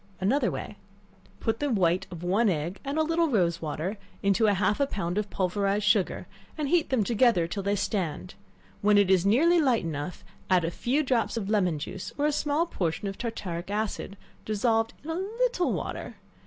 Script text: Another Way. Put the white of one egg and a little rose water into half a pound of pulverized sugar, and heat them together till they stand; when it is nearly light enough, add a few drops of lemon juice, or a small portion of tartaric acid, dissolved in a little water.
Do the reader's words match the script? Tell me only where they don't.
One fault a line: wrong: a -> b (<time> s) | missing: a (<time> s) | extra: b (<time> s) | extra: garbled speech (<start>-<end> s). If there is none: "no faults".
no faults